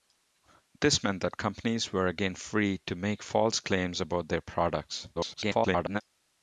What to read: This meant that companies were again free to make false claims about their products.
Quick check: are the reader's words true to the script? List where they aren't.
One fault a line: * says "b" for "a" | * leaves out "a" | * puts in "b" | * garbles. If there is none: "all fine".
* garbles